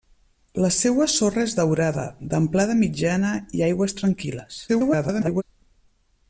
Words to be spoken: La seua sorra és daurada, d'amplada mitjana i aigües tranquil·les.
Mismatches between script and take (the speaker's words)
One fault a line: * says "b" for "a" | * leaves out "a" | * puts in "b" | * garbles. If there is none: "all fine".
* garbles